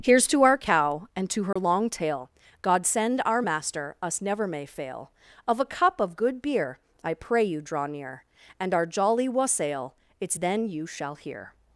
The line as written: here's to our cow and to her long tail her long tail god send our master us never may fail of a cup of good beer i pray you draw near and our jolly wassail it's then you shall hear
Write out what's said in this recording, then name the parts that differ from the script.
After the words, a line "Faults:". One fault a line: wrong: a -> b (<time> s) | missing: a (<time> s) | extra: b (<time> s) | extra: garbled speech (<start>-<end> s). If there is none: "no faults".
here's to our cow and to her long tail god send our master us never may fail of a cup of good beer i pray you draw near and our jolly wassail it's then you shall hear
Faults:
missing: her long tail (2.3 s)